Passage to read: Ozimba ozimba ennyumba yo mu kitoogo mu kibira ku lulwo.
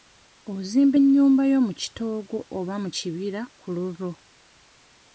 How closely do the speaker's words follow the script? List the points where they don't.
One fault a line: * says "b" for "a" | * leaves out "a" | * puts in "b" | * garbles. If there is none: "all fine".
* leaves out "ozimba"
* puts in "oba"